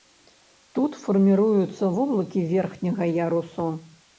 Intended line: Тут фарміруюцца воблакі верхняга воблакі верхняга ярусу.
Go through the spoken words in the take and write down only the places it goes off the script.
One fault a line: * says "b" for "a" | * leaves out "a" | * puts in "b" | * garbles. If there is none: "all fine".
* leaves out "воблакі верхняга"